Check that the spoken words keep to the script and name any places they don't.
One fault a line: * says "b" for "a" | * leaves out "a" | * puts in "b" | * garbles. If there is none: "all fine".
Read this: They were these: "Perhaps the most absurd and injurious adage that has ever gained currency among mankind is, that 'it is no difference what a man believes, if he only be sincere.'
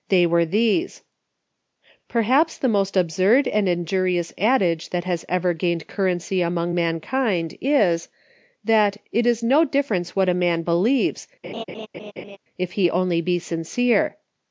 all fine